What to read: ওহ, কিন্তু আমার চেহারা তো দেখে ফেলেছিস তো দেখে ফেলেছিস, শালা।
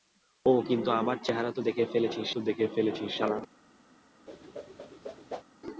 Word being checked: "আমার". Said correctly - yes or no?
yes